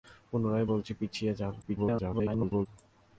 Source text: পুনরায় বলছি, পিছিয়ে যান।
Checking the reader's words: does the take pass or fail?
fail